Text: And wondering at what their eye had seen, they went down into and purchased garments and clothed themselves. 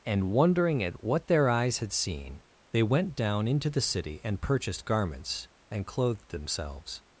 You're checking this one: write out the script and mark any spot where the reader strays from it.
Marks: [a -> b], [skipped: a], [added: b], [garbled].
And wondering at what their [eye -> eyes] had seen, they went down into [added: the city] and purchased garments and clothed themselves.